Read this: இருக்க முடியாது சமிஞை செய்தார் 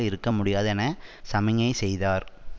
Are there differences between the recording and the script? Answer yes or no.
yes